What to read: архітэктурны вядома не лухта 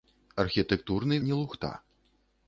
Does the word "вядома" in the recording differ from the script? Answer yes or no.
yes